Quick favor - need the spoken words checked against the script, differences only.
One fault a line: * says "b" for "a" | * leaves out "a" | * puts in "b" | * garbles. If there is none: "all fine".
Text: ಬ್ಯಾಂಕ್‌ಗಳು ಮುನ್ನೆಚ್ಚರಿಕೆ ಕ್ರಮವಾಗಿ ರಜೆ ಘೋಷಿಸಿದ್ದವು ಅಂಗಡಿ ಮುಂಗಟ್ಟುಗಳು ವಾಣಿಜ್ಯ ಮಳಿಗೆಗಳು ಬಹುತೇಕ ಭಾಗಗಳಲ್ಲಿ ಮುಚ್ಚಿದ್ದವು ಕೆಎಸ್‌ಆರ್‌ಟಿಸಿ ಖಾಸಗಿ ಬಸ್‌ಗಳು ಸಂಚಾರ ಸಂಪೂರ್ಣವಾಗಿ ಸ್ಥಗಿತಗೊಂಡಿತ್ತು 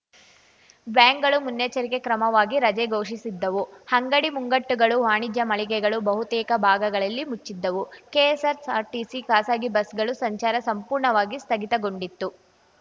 all fine